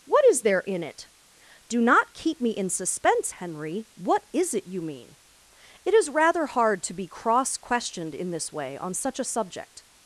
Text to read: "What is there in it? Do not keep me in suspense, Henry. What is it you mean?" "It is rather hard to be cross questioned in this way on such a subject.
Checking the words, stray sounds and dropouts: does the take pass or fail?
pass